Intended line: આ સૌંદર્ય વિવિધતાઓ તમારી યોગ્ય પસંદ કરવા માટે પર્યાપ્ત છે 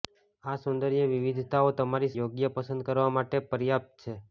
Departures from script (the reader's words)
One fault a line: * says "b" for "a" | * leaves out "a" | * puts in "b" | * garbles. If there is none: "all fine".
all fine